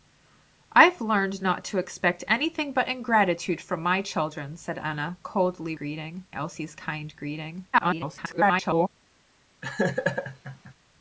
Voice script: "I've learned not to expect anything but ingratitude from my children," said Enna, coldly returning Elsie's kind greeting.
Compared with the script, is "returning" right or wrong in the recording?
wrong